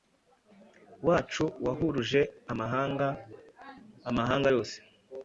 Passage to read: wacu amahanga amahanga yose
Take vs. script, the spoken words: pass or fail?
fail